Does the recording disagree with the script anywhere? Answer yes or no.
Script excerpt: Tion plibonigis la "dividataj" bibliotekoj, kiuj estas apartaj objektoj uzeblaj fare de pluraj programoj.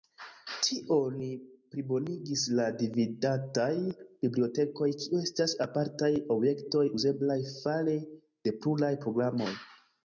no